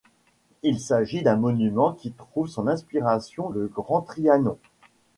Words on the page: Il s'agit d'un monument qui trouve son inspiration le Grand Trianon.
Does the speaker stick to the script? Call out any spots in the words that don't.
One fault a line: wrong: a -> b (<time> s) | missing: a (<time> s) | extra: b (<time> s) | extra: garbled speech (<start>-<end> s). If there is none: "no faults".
no faults